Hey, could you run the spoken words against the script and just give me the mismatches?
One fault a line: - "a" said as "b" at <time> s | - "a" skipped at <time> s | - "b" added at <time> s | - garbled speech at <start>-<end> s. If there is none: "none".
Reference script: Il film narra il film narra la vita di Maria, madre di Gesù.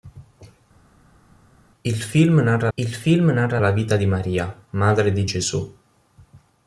none